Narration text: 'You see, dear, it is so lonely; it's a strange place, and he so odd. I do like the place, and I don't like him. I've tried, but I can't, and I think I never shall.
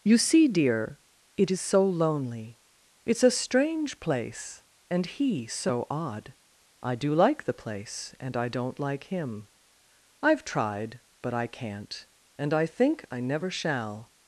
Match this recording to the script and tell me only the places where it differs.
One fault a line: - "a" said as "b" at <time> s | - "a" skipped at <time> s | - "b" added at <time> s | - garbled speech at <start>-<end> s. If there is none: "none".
none